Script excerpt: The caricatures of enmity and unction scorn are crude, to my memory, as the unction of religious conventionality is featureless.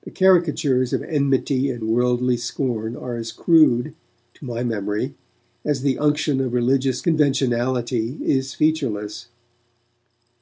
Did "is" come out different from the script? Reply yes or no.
no